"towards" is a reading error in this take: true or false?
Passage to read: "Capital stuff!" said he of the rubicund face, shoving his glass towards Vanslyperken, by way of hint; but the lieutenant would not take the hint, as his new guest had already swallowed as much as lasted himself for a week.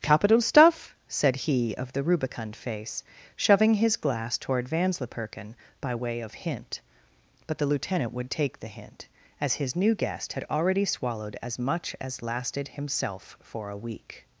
true